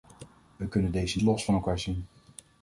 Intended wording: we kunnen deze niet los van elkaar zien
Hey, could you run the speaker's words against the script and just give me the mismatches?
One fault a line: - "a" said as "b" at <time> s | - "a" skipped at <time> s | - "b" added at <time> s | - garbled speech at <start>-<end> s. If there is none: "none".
- "niet" skipped at 1.2 s